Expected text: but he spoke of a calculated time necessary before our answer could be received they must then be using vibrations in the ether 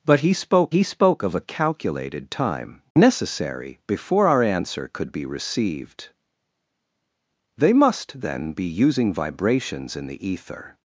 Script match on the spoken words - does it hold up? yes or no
no